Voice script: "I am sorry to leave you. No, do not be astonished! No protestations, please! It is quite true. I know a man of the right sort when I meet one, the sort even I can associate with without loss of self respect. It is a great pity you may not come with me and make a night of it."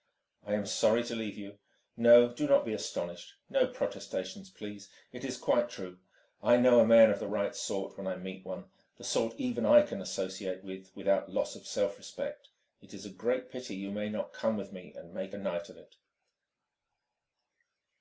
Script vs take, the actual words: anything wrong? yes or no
no